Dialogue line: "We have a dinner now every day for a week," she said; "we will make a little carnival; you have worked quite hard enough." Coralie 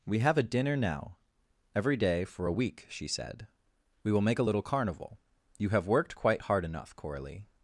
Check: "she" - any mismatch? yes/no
no